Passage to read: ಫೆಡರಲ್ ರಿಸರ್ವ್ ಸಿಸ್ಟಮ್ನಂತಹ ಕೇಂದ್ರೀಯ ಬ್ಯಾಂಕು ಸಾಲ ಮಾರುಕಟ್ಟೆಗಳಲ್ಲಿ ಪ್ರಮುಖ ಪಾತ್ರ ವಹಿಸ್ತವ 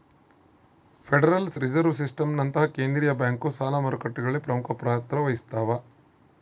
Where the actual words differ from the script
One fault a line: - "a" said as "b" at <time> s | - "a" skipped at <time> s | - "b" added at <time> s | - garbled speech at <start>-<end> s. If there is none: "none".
none